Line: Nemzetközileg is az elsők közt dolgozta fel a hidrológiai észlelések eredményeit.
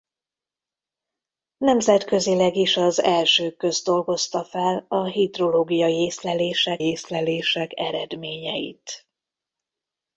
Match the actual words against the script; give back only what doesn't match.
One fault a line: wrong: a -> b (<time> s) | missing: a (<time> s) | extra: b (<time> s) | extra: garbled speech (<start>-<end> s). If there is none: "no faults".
extra: észlelések (6.8 s)